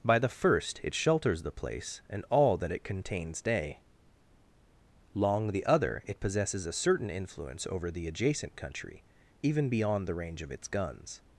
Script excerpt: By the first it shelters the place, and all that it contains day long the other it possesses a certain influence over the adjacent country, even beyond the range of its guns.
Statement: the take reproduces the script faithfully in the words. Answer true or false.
true